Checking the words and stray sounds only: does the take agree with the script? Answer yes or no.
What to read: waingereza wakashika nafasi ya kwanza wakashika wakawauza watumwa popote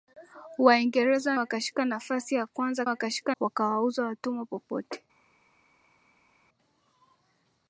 yes